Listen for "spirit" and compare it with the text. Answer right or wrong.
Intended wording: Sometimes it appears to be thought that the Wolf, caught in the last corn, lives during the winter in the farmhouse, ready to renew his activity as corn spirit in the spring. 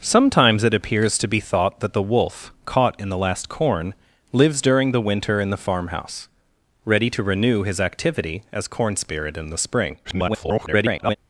right